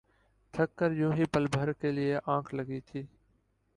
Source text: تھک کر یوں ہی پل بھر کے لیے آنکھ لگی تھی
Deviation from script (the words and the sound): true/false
false